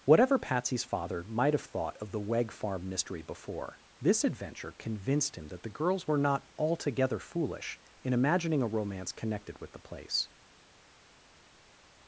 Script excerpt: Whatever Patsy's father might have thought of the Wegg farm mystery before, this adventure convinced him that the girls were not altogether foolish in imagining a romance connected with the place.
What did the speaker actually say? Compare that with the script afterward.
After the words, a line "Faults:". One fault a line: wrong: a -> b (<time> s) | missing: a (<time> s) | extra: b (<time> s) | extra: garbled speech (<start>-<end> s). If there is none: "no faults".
Whatever Patsy's father might have thought of the Wegg farm mystery before, this adventure convinced him that the girls were not altogether foolish in imagining a romance connected with the place.
Faults:
no faults